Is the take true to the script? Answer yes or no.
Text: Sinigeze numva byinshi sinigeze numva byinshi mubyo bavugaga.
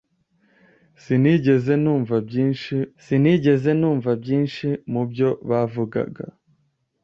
yes